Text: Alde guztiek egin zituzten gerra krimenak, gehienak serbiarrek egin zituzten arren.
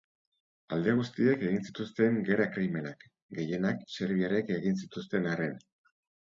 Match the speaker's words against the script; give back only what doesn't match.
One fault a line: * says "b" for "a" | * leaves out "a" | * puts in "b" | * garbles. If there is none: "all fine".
all fine